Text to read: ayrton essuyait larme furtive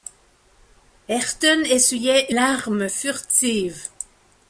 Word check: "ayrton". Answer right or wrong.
right